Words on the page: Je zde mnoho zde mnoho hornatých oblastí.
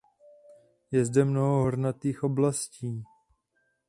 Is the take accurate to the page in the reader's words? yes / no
no